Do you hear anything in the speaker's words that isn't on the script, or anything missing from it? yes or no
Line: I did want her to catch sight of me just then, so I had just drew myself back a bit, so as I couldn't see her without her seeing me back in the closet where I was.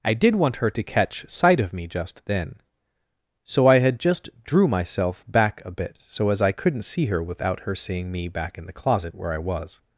no